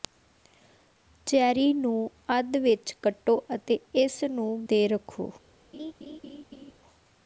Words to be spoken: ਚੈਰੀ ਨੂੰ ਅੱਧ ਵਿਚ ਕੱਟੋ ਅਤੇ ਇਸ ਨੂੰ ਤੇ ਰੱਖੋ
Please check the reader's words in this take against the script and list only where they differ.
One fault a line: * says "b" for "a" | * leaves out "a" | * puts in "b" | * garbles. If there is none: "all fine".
all fine